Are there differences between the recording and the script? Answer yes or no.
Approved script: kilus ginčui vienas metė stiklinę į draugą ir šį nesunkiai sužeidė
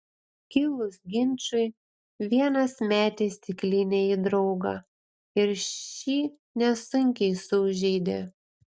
no